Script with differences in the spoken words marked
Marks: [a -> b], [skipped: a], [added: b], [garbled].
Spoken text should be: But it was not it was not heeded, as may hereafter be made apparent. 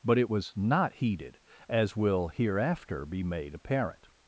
But it was not [skipped: it was not] heeded, as [may -> will] hereafter be made apparent.